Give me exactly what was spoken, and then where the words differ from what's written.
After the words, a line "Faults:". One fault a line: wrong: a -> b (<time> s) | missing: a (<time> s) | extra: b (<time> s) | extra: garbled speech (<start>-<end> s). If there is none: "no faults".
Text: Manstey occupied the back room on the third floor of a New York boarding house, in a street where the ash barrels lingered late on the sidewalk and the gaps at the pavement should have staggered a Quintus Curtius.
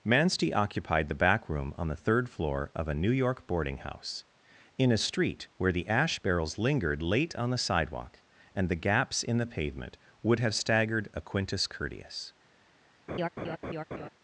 Manstey occupied the back room on the third floor of a New York boarding house, in a street where the ash barrels lingered late on the sidewalk and the gaps in the pavement would have staggered a Quintus Curtius.
Faults:
wrong: at -> in (9.2 s)
wrong: should -> would (10.2 s)